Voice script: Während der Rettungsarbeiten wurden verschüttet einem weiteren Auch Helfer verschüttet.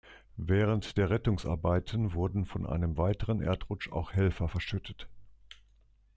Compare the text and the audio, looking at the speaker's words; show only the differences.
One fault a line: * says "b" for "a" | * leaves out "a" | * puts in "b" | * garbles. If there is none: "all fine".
* says "von" for "verschüttet"
* puts in "Erdrutsch"